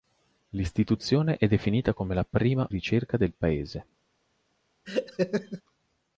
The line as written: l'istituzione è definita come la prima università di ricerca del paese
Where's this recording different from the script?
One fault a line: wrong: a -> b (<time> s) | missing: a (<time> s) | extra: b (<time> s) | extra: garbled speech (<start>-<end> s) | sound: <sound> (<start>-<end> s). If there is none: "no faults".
missing: università di (2.7 s)
sound: laugh (4.8-5.6 s)